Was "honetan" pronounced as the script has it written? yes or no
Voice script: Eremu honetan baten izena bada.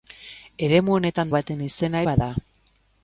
yes